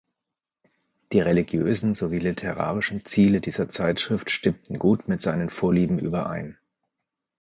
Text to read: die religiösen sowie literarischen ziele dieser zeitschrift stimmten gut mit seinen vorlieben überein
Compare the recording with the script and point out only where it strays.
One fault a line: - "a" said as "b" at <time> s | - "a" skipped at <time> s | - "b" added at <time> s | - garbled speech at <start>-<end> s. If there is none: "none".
none